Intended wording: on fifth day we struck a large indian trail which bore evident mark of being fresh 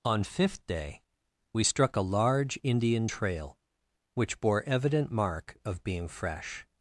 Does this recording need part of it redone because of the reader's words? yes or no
no